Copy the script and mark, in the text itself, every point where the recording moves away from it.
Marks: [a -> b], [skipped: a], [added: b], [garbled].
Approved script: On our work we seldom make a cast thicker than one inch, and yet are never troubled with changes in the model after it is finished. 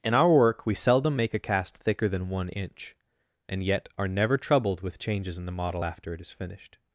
[On -> In] our work we seldom make a cast thicker than one inch, and yet are never troubled with changes in the model after it is finished.